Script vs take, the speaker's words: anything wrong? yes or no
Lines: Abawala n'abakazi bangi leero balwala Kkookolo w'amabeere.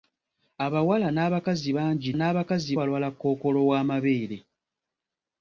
yes